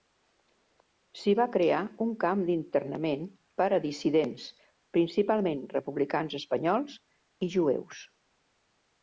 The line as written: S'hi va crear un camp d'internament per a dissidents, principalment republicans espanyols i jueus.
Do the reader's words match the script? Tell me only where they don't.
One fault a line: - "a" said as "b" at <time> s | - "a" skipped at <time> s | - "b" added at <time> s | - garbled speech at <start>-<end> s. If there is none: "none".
none